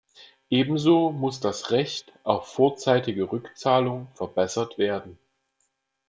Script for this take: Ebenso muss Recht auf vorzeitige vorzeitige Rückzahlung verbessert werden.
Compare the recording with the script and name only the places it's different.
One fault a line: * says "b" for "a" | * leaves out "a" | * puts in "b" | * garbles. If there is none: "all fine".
* puts in "das"
* leaves out "vorzeitige"